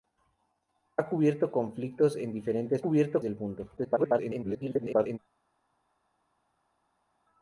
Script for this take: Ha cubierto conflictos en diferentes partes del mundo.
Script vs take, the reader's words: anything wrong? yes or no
yes